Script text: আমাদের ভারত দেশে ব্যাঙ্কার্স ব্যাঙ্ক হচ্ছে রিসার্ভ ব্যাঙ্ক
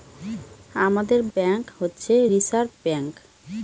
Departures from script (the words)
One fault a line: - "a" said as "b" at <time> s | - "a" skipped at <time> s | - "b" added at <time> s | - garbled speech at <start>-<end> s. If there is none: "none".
- "ভারত দেশে ব্যাঙ্কার্স" skipped at 1.2 s